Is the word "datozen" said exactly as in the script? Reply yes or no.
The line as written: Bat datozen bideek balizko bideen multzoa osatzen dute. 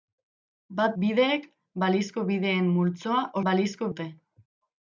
no